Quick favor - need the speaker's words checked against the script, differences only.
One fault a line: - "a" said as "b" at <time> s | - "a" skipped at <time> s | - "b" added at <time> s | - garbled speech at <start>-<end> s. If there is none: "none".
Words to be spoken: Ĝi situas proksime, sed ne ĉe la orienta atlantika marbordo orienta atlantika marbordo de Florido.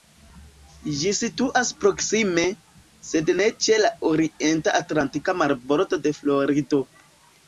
- "orienta atlantika marbordo" skipped at 6.0 s